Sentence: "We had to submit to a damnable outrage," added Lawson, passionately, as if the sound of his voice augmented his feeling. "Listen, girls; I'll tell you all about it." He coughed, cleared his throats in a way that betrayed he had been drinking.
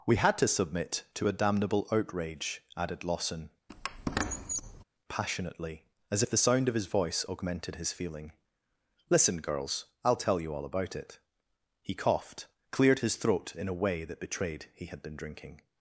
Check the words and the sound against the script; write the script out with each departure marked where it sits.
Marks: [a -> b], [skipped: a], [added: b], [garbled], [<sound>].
"We had to submit to a damnable outrage," added Lawson, [squeak] passionately, as if the sound of his voice augmented his feeling. "Listen, girls; I'll tell you all about it." He coughed, cleared his [throats -> throat] in a way that betrayed he had been drinking.